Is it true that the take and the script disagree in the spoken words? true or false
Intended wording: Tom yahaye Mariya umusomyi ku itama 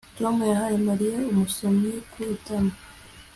false